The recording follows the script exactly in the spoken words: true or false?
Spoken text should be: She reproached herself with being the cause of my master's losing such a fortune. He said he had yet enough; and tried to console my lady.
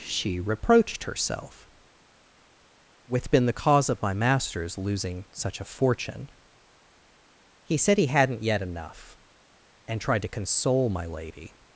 false